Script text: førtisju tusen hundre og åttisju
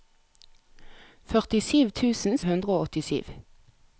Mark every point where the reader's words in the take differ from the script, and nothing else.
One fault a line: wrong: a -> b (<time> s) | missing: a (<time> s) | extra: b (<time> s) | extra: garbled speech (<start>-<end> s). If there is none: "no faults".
no faults